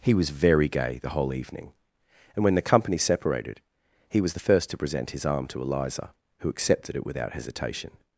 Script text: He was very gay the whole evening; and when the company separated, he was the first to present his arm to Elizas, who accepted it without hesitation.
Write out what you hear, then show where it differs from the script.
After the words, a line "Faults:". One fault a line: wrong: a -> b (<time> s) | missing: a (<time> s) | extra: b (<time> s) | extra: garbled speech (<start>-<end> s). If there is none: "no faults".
He was very gay the whole evening; and when the company separated, he was the first to present his arm to Eliza, who accepted it without hesitation.
Faults:
wrong: Elizas -> Eliza (5.6 s)